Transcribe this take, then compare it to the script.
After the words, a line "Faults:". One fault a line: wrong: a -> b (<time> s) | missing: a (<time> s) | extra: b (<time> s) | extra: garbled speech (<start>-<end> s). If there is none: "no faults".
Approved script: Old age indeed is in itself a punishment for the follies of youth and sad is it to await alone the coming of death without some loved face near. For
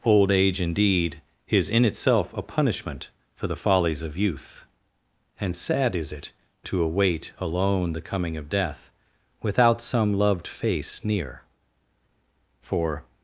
Old age indeed is in itself a punishment for the follies of youth and sad is it to await alone the coming of death without some loved face near. For
Faults:
no faults